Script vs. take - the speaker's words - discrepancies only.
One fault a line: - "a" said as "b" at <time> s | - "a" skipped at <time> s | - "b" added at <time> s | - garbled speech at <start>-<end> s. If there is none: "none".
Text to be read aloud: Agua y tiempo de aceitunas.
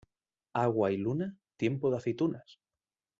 - "luna" added at 1.0 s